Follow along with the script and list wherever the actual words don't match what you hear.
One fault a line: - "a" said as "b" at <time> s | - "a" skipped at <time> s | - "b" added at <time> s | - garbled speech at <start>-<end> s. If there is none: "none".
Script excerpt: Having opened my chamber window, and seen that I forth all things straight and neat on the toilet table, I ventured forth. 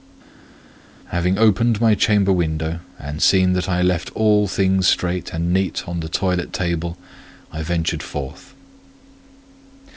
- "forth" said as "left" at 3.8 s